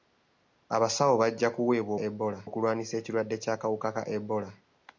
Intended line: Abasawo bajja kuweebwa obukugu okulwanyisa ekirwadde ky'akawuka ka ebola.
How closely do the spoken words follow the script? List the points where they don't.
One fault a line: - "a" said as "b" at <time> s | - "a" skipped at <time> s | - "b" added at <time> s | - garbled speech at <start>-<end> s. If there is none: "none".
- "obukugu" said as "ebola" at 2.1 s